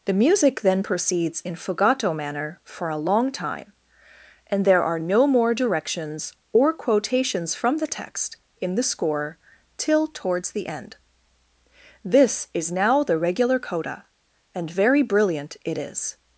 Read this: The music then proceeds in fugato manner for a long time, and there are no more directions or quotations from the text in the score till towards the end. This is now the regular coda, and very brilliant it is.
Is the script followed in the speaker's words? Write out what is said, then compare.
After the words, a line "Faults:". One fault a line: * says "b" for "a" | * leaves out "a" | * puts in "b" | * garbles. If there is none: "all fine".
The music then proceeds in fugato manner for a long time, and there are no more directions or quotations from the text in the score till towards the end. This is now the regular coda, and very brilliant it is.
Faults:
all fine